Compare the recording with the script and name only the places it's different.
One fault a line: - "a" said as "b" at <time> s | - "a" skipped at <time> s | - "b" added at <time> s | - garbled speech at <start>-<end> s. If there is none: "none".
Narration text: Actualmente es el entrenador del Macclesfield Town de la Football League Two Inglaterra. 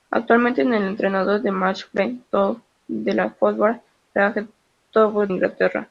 none